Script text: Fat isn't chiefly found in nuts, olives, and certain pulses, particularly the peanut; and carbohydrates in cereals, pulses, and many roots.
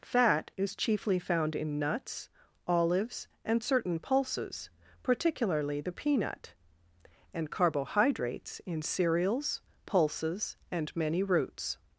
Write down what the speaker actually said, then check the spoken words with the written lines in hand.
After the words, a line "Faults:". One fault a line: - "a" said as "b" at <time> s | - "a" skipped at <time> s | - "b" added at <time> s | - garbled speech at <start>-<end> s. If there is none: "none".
Fat is chiefly found in nuts, olives, and certain pulses, particularly the peanut; and carbohydrates in cereals, pulses, and many roots.
Faults:
- "isn't" said as "is" at 0.6 s